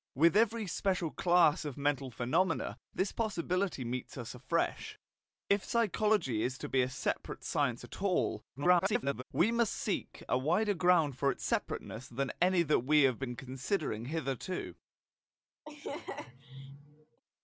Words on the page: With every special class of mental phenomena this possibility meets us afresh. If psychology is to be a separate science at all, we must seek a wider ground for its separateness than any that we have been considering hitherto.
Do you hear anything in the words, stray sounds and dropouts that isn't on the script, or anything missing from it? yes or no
yes